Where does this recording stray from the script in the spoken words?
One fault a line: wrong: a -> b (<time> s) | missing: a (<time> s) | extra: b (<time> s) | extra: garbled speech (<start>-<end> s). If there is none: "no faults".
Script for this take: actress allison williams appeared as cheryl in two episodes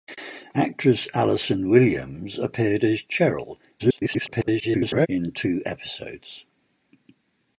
extra: garbled speech (3.8-5.1 s)